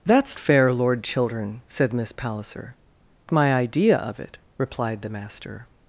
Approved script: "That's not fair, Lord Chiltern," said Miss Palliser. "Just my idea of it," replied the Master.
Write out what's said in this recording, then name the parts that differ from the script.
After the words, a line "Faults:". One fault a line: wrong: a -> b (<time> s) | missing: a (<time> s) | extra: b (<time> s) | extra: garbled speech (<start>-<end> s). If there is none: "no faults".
"That's fair, Lord Chiltern," said Miss Palliser. "My idea of it," replied the Master.
Faults:
missing: not (0.4 s)
missing: Just (2.8 s)